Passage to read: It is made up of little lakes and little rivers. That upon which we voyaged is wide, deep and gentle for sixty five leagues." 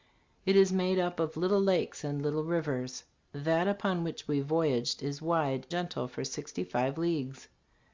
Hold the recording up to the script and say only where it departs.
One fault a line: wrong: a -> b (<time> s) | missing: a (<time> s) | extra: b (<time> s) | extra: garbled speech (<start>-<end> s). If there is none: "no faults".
missing: deep and (5.7 s)